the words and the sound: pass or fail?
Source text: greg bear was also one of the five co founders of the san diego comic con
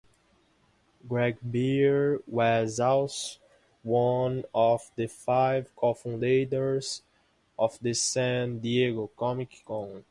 pass